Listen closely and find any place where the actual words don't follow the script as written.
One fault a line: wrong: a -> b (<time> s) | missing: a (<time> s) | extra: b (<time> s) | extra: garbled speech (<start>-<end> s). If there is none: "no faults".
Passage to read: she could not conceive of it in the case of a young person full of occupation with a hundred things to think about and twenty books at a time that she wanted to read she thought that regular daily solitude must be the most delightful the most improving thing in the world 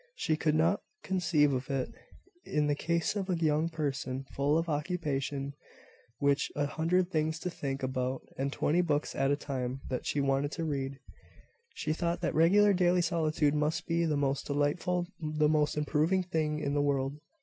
no faults